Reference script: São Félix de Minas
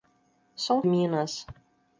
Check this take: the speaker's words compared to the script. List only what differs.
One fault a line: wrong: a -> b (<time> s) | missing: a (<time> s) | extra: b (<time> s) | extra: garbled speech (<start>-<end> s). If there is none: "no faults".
missing: Félix de (0.8 s)